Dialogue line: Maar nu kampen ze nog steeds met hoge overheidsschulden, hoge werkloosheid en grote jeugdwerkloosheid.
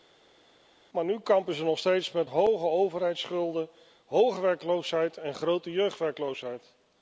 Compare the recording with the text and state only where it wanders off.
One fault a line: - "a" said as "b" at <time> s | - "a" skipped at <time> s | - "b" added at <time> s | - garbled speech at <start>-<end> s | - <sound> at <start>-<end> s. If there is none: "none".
none